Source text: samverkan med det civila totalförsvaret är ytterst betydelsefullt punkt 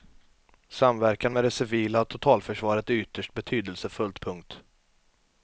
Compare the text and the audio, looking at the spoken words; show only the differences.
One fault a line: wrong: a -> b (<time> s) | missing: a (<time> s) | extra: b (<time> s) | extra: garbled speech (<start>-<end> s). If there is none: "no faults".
no faults